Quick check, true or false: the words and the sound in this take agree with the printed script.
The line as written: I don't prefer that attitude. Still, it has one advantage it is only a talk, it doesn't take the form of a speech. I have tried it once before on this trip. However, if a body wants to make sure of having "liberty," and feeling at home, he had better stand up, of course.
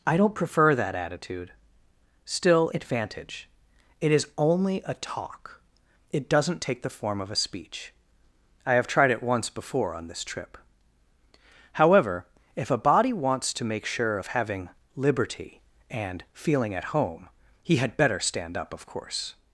false